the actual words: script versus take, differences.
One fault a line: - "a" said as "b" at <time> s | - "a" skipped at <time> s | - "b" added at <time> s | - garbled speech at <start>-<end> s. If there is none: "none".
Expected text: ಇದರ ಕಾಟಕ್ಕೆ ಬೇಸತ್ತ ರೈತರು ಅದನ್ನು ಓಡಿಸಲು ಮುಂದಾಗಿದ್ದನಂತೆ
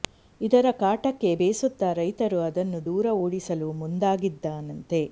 - "ದೂರ" added at 2.9 s